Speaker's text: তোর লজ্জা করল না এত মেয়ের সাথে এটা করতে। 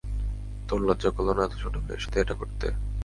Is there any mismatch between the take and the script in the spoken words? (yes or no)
yes